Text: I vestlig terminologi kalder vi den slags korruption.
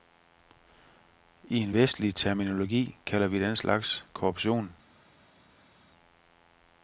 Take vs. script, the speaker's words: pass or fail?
fail